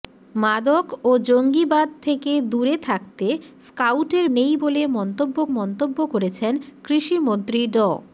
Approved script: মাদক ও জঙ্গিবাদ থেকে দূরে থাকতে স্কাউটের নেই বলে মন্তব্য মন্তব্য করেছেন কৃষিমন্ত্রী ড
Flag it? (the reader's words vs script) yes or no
no